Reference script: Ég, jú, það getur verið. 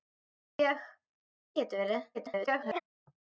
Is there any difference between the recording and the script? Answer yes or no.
yes